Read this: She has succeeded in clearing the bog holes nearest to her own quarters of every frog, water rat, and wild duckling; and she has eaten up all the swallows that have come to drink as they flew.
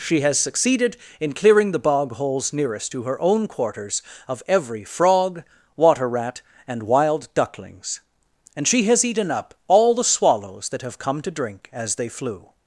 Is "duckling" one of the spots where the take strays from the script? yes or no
yes